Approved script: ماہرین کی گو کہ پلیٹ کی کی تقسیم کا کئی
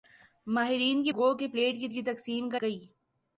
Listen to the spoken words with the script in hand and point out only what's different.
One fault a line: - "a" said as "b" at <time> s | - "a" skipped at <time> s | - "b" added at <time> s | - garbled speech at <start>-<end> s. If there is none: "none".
none